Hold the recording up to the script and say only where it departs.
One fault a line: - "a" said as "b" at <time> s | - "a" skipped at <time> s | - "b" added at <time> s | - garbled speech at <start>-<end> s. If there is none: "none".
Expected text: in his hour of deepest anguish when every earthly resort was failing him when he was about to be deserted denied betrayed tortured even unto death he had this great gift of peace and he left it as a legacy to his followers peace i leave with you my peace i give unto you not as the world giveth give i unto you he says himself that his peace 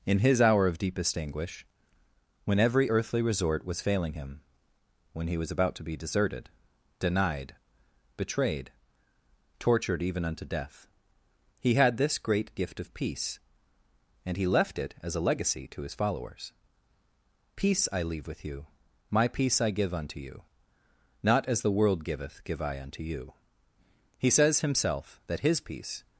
none